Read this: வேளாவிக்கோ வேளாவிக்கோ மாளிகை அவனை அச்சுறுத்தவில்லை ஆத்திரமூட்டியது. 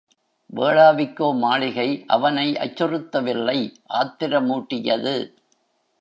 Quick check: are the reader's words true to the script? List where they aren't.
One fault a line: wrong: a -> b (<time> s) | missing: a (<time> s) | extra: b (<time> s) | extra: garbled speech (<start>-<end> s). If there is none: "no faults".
missing: வேளாவிக்கோ (1.3 s)